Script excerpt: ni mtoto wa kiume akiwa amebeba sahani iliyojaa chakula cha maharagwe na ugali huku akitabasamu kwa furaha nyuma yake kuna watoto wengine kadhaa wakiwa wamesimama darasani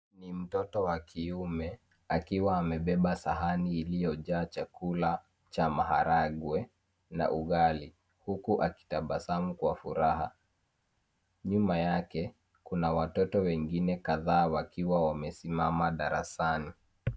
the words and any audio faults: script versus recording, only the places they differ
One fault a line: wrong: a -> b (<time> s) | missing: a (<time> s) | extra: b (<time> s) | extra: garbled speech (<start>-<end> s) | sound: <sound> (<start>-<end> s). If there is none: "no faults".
no faults